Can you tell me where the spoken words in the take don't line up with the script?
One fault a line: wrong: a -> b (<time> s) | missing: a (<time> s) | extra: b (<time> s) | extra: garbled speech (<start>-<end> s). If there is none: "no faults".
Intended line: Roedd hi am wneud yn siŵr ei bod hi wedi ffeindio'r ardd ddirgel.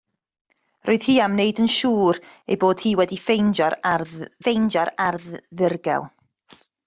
extra: ffeindio'r ardd (4.4 s)